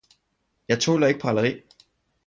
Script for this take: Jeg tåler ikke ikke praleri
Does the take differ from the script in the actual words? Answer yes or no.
yes